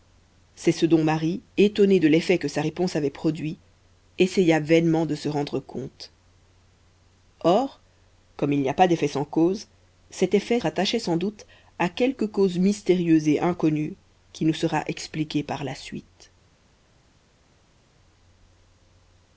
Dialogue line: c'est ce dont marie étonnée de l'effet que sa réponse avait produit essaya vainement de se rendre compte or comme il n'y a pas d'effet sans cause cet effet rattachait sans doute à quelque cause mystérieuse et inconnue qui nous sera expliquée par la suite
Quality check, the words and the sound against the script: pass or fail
pass